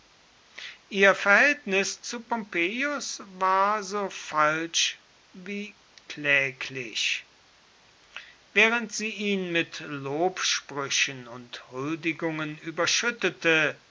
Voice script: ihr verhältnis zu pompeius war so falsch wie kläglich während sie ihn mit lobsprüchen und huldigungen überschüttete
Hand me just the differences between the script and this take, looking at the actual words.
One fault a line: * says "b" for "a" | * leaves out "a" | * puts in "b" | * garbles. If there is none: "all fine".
all fine